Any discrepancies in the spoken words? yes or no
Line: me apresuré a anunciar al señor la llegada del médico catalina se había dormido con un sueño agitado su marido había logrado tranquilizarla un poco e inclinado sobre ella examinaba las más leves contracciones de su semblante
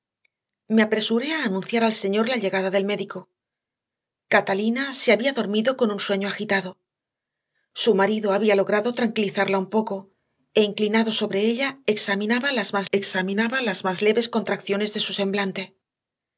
yes